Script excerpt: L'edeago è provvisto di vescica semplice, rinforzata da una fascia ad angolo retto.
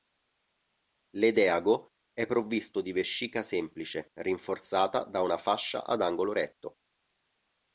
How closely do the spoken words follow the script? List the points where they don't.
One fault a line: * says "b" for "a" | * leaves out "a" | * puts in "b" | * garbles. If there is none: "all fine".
all fine